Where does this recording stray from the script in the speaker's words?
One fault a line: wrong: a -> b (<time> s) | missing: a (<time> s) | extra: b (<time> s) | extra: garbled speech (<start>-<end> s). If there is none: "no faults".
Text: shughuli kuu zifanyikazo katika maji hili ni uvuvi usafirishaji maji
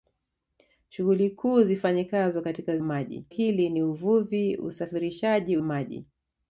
no faults